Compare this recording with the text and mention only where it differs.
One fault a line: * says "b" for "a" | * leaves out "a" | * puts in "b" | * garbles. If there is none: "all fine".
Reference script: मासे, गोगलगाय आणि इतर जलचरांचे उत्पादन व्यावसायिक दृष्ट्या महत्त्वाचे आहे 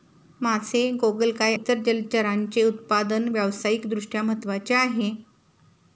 * leaves out "आणि"